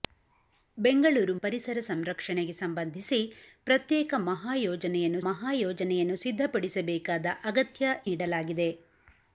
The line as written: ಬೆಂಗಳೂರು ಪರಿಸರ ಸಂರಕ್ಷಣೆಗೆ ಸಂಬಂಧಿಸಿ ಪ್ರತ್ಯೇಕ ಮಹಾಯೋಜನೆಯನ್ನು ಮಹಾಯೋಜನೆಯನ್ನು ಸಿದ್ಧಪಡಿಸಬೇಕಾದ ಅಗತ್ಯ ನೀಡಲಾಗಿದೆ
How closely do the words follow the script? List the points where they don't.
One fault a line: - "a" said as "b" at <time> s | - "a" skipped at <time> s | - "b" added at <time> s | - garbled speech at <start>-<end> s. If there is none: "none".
none